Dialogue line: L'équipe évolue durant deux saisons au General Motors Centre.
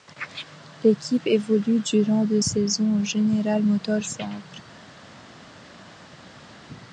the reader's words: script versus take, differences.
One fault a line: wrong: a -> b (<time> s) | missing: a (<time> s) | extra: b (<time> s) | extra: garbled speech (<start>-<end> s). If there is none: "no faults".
no faults